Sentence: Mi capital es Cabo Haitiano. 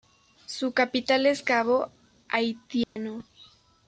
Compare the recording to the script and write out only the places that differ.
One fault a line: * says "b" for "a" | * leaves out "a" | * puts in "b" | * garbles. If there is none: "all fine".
* says "Su" for "Mi"